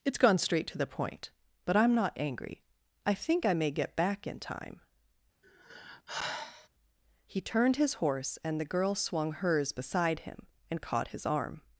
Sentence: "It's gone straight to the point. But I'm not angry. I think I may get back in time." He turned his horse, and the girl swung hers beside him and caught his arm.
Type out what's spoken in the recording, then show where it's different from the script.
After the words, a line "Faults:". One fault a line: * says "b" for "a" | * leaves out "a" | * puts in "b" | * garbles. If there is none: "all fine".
"It's gone straight to the point. But I'm not angry. I think I may get back in time." He turned his horse, and the girl swung hers beside him and caught his arm.
Faults:
all fine